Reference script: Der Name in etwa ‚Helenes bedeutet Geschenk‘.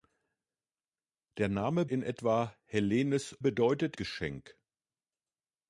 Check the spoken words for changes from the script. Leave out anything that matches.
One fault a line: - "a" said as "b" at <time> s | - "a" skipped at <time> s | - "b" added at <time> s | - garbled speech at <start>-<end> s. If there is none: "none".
none